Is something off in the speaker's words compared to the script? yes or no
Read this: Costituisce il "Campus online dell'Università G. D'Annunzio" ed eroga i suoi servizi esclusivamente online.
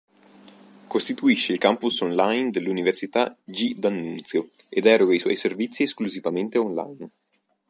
no